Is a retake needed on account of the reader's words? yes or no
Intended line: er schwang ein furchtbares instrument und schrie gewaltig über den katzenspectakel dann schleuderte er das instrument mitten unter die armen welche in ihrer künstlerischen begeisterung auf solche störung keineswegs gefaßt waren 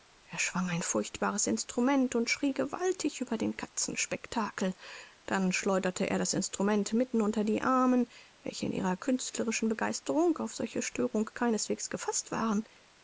no